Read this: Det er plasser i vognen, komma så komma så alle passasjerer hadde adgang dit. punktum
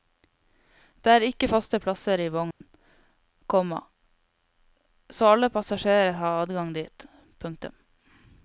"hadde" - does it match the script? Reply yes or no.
no